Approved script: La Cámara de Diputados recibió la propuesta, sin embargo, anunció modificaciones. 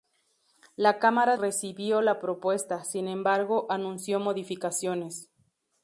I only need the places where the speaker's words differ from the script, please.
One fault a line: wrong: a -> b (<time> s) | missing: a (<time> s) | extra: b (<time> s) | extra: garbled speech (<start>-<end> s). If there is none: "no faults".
missing: de Diputados (1.4 s)